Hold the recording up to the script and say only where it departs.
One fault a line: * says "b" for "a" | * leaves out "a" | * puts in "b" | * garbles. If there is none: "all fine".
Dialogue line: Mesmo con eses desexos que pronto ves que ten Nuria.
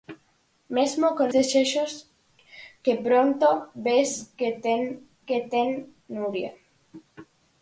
* leaves out "eses"
* puts in "que ten"